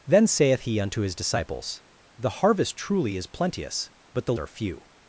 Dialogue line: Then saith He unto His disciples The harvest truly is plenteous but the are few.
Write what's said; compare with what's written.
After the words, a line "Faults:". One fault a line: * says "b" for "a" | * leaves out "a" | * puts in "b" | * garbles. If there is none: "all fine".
Then saith He unto His disciples The harvest truly is plenteous but the are few.
Faults:
all fine